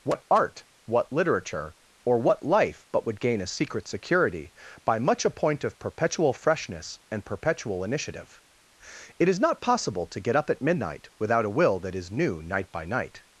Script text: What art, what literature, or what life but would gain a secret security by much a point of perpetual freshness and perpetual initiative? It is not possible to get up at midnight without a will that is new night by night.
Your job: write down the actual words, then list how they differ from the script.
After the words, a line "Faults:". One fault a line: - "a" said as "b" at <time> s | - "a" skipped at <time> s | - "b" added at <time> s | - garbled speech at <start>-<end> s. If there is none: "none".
What art, what literature, or what life but would gain a secret security by much a point of perpetual freshness and perpetual initiative? It is not possible to get up at midnight without a will that is new night by night.
Faults:
none